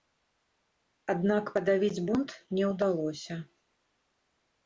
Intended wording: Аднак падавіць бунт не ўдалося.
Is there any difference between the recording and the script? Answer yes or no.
no